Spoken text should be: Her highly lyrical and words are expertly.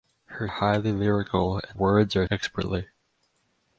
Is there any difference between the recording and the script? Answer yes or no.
no